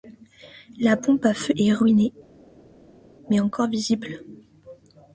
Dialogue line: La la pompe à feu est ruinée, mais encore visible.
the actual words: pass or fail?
fail